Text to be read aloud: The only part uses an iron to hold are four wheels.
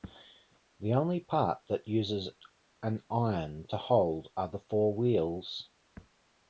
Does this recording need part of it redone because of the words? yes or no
yes